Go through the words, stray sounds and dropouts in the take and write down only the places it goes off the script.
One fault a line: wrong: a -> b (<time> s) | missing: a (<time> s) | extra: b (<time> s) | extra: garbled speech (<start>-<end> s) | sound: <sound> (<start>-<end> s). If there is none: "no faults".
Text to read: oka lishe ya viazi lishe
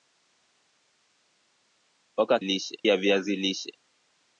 no faults